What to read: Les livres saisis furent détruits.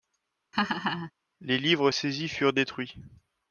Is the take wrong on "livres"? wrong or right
right